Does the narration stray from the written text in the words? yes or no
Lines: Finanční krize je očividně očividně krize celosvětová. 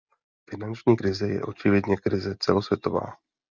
yes